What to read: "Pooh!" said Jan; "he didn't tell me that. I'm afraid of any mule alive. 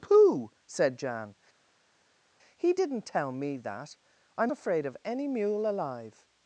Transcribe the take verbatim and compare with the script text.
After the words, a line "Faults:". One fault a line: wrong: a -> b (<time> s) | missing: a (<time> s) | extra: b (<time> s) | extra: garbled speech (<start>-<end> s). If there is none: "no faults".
"Pooh!" said Jan; "he didn't tell me that. I'm afraid of any mule alive.
Faults:
no faults